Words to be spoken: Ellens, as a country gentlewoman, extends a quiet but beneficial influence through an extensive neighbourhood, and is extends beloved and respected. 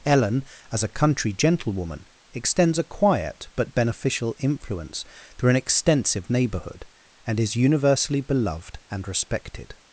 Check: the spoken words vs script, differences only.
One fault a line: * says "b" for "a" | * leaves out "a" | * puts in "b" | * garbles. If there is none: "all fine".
* says "Ellen" for "Ellens"
* says "universally" for "extends"